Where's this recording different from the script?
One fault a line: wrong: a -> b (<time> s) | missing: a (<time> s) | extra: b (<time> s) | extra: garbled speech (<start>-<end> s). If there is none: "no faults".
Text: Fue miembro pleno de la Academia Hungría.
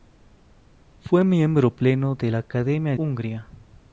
no faults